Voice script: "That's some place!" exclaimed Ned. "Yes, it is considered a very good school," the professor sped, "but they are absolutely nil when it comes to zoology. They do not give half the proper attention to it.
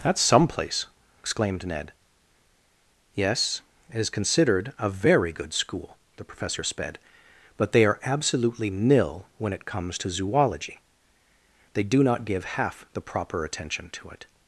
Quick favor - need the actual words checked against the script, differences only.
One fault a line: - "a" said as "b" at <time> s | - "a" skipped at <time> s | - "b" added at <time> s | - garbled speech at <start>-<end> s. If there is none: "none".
none